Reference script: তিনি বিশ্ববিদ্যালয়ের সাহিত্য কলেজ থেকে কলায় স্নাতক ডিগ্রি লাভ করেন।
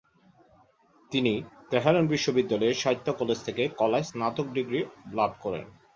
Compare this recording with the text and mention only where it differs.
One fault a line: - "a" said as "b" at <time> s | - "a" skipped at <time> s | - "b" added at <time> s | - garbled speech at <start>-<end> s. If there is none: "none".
- "তেহরান" added at 1.7 s